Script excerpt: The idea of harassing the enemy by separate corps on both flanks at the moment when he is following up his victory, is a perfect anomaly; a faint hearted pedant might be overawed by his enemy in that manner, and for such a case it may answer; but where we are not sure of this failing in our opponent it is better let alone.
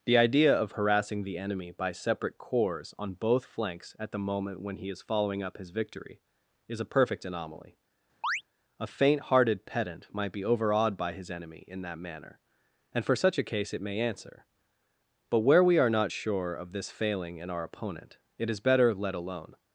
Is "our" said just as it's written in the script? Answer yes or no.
yes